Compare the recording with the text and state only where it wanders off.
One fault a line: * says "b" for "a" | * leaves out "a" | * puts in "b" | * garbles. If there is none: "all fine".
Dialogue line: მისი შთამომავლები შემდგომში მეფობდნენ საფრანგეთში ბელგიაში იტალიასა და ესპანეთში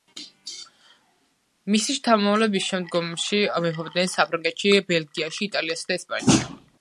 all fine